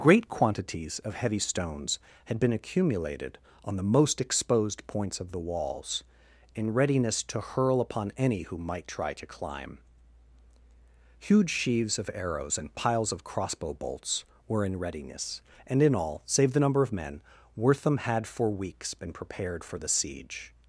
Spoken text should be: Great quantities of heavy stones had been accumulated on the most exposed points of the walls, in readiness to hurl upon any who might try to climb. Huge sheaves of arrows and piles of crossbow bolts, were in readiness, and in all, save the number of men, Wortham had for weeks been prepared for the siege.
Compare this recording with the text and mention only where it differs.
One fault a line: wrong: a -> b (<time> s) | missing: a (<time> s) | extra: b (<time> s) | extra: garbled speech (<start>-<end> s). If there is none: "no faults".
no faults